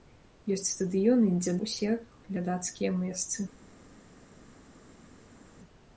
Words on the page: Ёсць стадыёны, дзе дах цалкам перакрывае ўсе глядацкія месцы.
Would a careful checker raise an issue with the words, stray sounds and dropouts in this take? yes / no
yes